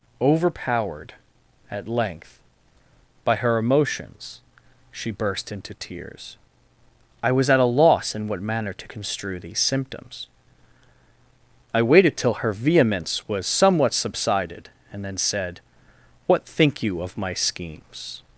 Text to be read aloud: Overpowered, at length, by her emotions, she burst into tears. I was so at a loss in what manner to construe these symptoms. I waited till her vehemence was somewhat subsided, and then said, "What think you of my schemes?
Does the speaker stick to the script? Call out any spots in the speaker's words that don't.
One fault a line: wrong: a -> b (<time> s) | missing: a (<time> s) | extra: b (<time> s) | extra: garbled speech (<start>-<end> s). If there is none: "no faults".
missing: so (7.5 s)